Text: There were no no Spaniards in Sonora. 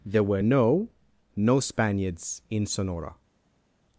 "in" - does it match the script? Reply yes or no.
yes